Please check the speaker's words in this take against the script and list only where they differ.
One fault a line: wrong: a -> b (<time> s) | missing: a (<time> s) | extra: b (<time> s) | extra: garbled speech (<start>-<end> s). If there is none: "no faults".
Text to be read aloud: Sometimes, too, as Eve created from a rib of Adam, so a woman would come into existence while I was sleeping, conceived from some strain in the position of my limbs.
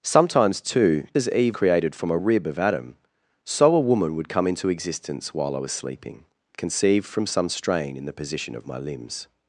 no faults